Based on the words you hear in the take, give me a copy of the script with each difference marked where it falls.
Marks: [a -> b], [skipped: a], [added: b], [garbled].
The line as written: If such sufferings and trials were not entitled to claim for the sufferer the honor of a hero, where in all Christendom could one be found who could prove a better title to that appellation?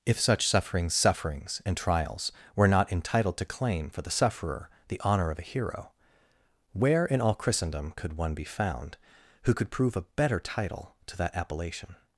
If such sufferings [added: sufferings] and trials were not entitled to claim for the sufferer the honor of a hero, where in all Christendom could one be found who could prove a better title to that appellation?